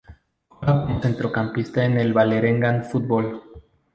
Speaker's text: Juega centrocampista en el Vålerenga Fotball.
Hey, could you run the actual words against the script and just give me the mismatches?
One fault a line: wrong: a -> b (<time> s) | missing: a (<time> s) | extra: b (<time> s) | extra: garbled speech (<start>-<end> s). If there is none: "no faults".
extra: como (0.8 s)